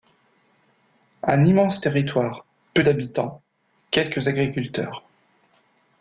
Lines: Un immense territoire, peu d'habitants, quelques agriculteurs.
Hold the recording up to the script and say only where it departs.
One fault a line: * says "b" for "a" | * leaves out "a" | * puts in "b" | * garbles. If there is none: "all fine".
all fine